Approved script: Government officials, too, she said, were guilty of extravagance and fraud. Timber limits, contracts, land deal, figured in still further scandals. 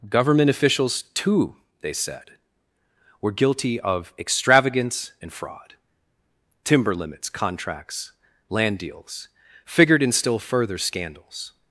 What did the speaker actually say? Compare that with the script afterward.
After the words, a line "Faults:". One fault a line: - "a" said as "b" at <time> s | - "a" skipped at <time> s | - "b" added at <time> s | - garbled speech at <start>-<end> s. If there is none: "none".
Government officials, too, they said, were guilty of extravagance and fraud. Timber limits, contracts, land deals, figured in still further scandals.
Faults:
- "she" said as "they" at 1.8 s
- "deal" said as "deals" at 8.8 s